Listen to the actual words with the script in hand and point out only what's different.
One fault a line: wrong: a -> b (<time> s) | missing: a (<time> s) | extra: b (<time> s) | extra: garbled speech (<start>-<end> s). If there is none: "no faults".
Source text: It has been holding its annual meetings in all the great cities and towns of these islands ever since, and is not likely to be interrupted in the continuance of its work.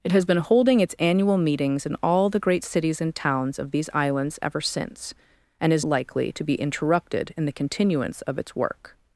missing: not (5.8 s)